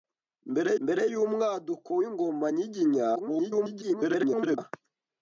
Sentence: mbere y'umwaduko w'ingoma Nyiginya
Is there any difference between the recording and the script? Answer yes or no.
yes